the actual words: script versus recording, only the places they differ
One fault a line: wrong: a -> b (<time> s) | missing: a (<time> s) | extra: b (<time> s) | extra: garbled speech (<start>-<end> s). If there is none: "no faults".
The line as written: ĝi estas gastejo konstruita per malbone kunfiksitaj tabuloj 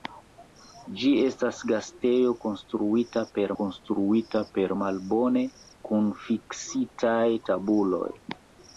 extra: konstruita per (3.6 s)